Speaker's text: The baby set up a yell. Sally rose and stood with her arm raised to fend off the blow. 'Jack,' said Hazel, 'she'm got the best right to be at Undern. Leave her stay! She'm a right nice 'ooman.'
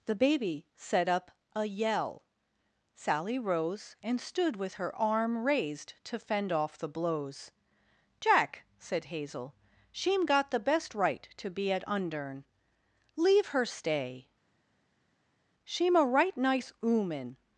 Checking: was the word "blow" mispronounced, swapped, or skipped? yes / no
yes